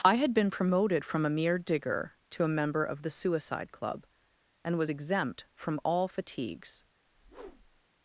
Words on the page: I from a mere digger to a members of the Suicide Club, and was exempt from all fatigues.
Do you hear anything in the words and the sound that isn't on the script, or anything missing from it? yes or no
yes